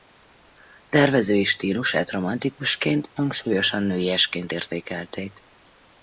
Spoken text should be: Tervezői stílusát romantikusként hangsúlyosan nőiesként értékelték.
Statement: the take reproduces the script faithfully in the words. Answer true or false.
true